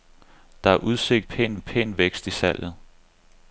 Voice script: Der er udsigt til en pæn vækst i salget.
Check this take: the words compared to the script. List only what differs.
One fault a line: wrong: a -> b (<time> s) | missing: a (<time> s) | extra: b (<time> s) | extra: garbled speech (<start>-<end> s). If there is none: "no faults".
wrong: til -> pæn (1.2 s)